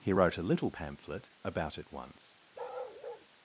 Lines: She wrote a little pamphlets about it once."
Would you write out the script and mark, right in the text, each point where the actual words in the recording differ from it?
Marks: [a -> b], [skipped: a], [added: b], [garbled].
[She -> He] wrote a little [pamphlets -> pamphlet] about it once."